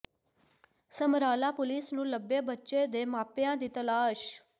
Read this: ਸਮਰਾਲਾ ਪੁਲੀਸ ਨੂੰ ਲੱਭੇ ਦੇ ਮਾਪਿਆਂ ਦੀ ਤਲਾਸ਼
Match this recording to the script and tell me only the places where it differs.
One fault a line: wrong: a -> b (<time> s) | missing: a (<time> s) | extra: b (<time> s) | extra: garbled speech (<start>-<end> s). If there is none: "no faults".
extra: ਬੱਚੇ (2.4 s)